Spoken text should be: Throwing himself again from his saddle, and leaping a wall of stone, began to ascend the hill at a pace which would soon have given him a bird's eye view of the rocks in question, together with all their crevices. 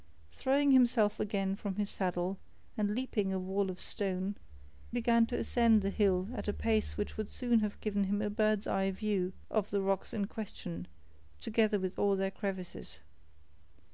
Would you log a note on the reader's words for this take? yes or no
no